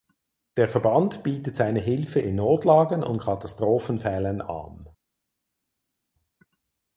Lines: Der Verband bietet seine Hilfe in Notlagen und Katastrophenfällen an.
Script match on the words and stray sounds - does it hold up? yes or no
yes